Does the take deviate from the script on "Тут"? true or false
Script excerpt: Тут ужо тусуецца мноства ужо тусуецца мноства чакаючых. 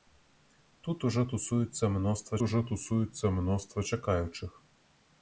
false